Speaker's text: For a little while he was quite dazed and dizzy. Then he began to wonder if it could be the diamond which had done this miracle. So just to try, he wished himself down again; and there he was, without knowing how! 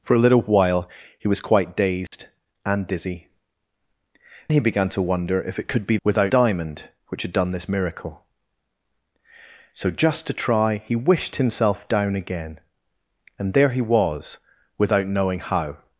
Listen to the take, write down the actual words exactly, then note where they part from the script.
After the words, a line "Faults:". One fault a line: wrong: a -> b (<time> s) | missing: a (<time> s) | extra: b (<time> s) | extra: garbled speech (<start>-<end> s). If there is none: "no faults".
For a little while he was quite dazed and dizzy. He began to wonder if it could be without diamond which had done this miracle. So just to try, he wished himself down again; and there he was, without knowing how!
Faults:
missing: Then (3.3 s)
wrong: the -> without (6.0 s)